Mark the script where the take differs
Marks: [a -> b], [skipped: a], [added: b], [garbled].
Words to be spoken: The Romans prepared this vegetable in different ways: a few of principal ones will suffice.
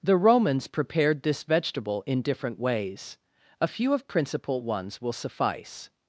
The Romans prepared this vegetable in different ways: a few of principal ones will suffice.